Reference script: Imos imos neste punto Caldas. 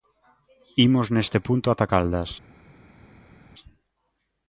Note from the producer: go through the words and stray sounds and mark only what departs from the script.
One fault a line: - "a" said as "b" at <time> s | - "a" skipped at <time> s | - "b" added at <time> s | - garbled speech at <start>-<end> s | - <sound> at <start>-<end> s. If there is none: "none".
- "imos" skipped at 1.1 s
- "ata" added at 1.7 s